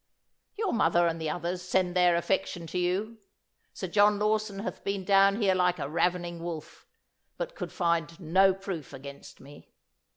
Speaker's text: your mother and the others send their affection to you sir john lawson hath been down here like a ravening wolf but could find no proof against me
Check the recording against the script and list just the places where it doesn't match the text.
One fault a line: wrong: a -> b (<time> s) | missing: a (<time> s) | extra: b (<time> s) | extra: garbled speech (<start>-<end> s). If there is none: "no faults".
no faults